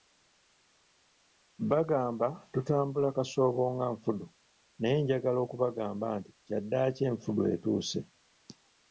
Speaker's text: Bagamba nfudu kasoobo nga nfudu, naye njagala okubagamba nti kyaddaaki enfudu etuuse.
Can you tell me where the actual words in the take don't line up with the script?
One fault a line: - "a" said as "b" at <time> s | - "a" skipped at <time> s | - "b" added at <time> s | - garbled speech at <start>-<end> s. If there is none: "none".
- "nfudu" said as "tutambula" at 2.5 s